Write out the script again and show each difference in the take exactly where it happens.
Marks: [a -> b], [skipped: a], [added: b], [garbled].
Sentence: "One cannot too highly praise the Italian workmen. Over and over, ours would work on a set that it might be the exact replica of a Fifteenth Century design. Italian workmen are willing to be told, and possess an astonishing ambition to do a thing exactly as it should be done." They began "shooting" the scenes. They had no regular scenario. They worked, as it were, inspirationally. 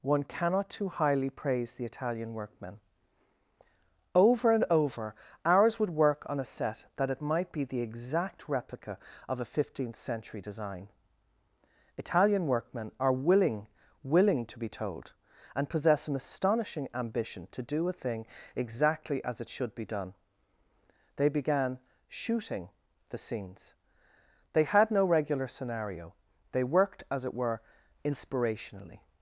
"One cannot too highly praise the Italian workmen. Over and over, ours would work on a set that it might be the exact replica of a Fifteenth Century design. Italian workmen are willing [added: willing] to be told, and possess an astonishing ambition to do a thing exactly as it should be done." They began "shooting" the scenes. They had no regular scenario. They worked, as it were, inspirationally.